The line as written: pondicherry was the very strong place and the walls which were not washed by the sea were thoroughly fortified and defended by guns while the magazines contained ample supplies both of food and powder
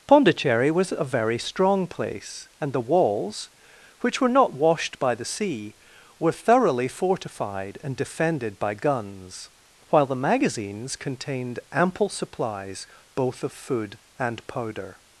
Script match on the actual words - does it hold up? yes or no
no